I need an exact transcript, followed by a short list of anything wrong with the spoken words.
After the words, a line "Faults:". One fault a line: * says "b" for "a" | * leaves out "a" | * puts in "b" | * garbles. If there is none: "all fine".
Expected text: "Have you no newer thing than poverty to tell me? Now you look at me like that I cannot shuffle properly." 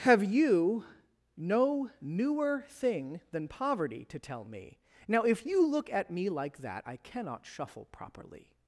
"Have you no newer thing than poverty to tell me? Now if you look at me like that I cannot shuffle properly."
Faults:
* puts in "if"